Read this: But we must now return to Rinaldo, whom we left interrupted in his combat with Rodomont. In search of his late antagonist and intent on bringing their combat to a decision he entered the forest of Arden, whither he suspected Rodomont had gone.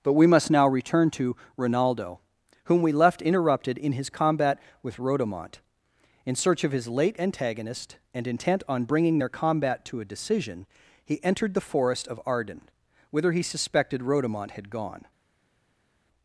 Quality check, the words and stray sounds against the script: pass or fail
pass